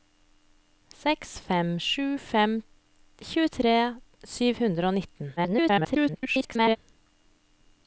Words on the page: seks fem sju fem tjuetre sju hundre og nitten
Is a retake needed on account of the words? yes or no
yes